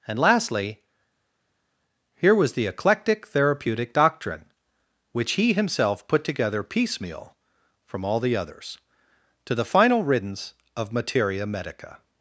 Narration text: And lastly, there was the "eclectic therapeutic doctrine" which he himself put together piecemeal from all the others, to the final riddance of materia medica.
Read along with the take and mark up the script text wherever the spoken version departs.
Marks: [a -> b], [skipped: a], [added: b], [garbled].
And lastly, [there -> here] was the "eclectic therapeutic doctrine" which he himself put together piecemeal from all the others, to the final riddance of materia medica.